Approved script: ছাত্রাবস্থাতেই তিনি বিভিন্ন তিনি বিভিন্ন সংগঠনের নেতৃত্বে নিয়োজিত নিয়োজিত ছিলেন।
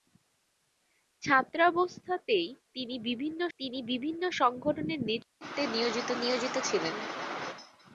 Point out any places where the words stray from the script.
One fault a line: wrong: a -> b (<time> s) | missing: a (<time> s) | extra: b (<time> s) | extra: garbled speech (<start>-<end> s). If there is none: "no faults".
no faults